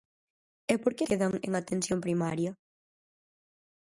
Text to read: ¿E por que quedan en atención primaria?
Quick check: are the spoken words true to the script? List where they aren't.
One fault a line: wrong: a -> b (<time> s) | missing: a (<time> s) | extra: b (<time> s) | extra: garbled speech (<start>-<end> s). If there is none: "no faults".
no faults